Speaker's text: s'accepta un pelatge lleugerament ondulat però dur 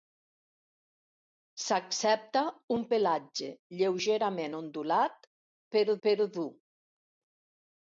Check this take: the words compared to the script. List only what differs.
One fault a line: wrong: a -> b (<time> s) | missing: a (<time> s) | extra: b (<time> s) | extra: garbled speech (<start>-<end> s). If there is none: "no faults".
extra: però (6.1 s)